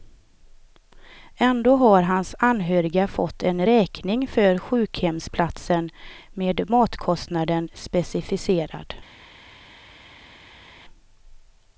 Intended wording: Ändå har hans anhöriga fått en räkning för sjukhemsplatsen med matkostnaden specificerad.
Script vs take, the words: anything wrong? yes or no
no